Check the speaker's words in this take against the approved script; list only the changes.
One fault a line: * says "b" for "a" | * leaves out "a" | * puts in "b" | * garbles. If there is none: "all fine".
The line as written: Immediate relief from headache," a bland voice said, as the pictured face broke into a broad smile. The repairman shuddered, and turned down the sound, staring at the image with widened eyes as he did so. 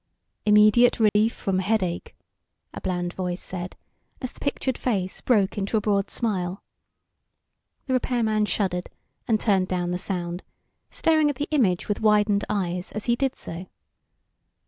all fine